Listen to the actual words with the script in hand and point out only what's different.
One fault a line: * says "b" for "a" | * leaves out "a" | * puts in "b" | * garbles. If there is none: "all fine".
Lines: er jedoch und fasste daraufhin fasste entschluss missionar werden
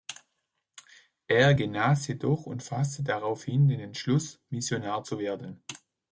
* puts in "genas"
* says "den" for "fasste"
* puts in "zu"